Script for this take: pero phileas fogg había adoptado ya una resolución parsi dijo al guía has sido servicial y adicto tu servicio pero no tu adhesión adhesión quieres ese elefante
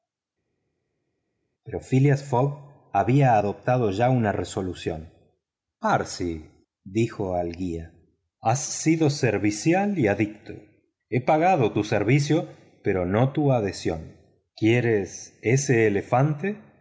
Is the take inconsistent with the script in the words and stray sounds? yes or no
yes